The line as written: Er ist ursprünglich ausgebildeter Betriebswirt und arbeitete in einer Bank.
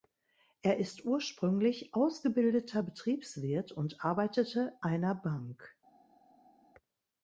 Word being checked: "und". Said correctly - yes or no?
yes